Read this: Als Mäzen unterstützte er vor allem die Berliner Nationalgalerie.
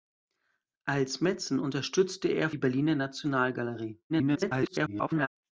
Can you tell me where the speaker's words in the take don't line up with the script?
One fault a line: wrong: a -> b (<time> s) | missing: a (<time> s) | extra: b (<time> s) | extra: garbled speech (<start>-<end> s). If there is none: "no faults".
missing: vor allem (2.5 s)
extra: garbled speech (4.1-5.3 s)